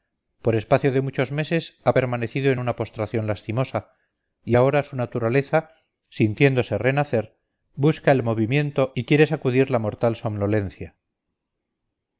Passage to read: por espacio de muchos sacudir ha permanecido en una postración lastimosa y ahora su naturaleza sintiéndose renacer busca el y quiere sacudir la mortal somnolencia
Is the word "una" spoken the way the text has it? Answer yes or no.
yes